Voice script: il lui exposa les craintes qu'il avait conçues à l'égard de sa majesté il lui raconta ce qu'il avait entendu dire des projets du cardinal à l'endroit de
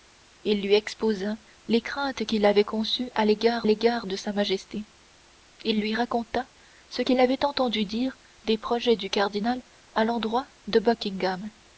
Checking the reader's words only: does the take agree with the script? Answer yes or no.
no